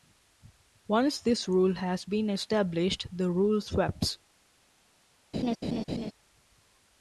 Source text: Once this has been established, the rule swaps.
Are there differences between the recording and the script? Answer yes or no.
yes